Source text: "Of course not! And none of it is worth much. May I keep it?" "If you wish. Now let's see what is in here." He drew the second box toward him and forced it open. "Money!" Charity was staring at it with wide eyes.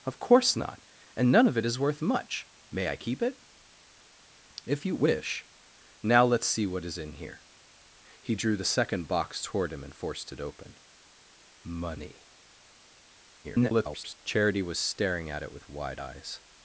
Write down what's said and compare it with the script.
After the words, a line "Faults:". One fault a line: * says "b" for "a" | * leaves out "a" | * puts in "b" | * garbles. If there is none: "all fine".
"Of course not! And none of it is worth much. May I keep it?" "If you wish. Now let's see what is in here." He drew the second box toward him and forced it open. "Money!" [garbled] Charity was staring at it with wide eyes.
Faults:
* garbles